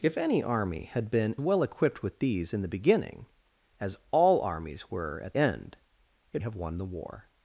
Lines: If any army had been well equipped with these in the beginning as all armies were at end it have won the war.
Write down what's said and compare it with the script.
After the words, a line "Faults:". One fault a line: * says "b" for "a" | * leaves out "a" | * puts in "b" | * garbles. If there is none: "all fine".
If any army had been well equipped with these in the beginning as all armies were at end it have won the war.
Faults:
all fine